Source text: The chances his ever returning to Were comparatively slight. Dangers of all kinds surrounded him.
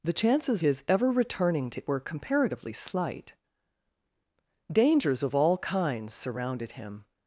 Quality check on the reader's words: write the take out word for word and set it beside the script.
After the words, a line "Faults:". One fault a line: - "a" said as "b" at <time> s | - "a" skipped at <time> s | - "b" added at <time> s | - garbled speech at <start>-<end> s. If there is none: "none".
The chances his ever returning to Were comparatively slight. Dangers of all kinds surrounded him.
Faults:
none